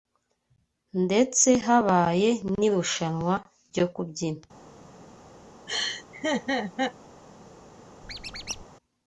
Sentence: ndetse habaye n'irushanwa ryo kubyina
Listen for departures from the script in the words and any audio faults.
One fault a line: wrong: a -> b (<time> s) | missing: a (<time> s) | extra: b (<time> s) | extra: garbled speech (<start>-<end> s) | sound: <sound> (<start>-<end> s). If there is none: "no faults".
sound: laugh (5.7-6.9 s)
sound: squeak (8.0-8.6 s)